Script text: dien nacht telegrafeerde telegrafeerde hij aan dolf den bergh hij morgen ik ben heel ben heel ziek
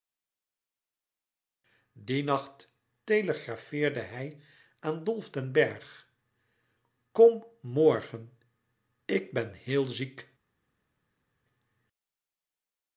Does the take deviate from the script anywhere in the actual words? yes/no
yes